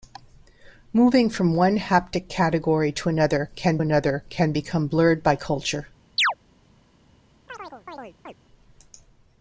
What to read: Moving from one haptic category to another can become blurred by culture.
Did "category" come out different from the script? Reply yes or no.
no